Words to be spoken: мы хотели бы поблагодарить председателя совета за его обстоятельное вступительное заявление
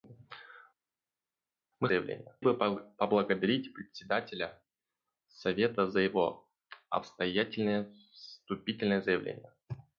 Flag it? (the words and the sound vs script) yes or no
yes